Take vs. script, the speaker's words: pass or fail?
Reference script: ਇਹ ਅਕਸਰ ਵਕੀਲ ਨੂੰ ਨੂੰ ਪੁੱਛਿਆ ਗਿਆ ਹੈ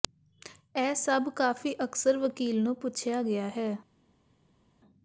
fail